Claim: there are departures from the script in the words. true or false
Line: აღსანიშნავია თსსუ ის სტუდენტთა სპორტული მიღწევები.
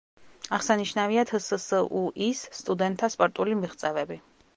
false